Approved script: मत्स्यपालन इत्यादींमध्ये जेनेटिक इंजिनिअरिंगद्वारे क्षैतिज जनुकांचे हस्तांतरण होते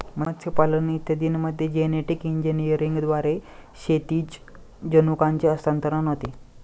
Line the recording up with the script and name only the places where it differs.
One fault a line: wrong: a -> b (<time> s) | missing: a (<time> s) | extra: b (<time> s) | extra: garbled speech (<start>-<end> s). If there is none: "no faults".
no faults